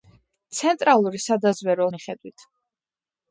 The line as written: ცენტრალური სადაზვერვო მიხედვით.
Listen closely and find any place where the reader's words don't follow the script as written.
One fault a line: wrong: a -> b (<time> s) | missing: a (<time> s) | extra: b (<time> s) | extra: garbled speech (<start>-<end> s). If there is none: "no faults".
no faults